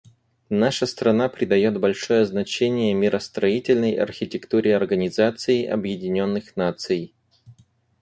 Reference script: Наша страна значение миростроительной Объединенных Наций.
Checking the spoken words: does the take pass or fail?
fail